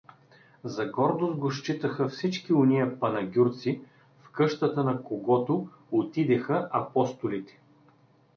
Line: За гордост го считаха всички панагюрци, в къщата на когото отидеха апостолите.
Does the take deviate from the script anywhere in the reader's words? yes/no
yes